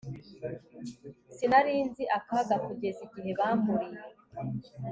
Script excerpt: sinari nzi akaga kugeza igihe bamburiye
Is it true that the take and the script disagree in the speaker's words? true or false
false